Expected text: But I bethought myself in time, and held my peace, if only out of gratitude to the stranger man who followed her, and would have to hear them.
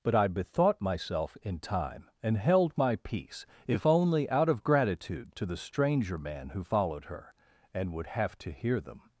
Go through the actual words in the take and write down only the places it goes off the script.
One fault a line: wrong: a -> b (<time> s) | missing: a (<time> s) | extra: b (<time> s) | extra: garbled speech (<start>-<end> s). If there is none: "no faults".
no faults